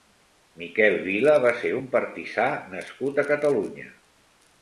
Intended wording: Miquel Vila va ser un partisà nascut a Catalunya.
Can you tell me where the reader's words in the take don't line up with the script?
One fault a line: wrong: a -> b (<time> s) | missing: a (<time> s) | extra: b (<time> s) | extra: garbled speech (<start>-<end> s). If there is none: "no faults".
no faults